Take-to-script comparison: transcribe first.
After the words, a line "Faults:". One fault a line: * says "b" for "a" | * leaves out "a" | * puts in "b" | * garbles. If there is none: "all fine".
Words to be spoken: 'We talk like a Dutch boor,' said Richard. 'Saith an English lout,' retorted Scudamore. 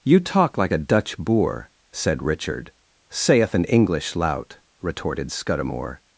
'You talk like a Dutch boor,' said Richard. 'Saith an English lout,' retorted Scudamore.
Faults:
* says "You" for "We"